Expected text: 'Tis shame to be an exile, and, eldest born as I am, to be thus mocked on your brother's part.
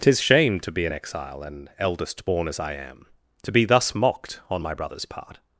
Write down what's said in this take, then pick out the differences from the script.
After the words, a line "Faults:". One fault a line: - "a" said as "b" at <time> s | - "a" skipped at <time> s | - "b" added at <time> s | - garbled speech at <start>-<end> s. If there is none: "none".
'Tis shame to be an exile, and, eldest born as I am, to be thus mocked on my brother's part.
Faults:
- "your" said as "my" at 4.6 s